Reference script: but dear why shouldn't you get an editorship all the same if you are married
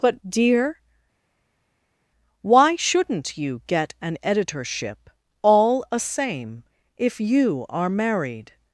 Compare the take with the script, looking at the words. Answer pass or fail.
fail